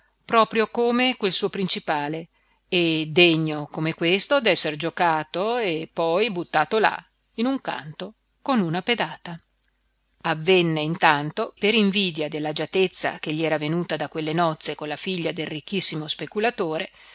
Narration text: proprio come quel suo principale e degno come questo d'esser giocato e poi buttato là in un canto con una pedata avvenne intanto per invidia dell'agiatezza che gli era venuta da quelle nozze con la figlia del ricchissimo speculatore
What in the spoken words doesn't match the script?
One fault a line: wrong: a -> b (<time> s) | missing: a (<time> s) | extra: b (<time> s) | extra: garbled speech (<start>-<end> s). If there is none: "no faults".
no faults